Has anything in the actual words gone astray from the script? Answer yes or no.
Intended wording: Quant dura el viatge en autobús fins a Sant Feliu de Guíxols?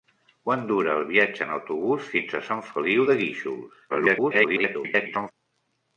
yes